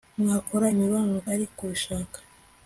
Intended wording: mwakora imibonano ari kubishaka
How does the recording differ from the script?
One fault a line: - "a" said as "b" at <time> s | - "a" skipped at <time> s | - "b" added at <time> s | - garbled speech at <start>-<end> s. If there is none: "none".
none